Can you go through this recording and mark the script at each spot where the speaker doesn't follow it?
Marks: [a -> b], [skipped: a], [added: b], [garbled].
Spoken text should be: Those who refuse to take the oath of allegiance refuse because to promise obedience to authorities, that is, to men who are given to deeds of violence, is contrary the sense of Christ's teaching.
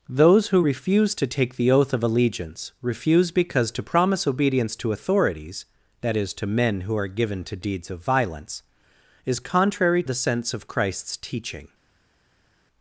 Those who refuse to take the oath of allegiance refuse because to promise obedience to authorities, that is, to men who are given to deeds of violence, is contrary the sense of Christ's teaching.